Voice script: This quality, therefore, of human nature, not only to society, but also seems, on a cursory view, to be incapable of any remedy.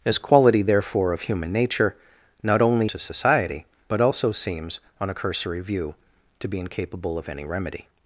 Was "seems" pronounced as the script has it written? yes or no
yes